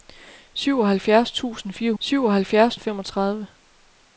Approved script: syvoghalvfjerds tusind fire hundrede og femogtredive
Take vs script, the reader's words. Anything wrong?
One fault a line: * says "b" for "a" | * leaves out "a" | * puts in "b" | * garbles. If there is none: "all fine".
* says "syvoghalvfjerds" for "hundrede"